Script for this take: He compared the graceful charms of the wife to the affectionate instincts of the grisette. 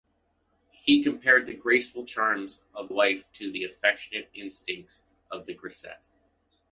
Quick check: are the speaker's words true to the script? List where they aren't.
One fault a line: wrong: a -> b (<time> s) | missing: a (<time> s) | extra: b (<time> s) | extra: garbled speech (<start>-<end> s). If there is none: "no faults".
missing: the (2.9 s)